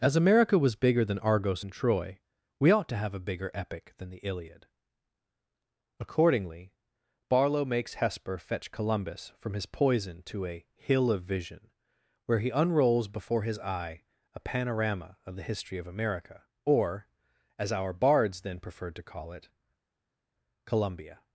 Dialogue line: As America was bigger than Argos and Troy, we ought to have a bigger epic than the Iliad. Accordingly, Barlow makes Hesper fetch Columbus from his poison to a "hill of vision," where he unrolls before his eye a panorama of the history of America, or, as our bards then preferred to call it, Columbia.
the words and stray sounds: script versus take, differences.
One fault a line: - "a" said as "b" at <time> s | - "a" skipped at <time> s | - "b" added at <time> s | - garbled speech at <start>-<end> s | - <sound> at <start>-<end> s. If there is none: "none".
none